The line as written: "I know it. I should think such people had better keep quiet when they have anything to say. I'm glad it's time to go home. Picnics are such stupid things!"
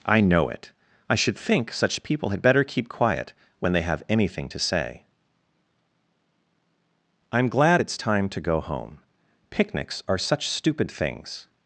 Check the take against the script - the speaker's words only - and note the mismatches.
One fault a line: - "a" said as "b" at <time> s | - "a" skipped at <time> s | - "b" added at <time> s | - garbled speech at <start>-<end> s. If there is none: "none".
none